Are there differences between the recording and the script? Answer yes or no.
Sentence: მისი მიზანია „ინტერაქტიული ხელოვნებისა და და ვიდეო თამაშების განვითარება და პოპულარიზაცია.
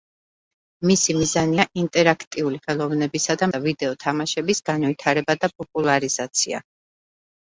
no